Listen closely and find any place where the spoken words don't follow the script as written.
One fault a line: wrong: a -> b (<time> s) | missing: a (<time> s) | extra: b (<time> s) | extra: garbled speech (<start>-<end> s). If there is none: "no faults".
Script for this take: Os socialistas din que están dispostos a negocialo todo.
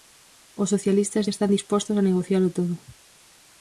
missing: din (1.2 s)